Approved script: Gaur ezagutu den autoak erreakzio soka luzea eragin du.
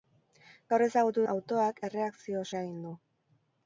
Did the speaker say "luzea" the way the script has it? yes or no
no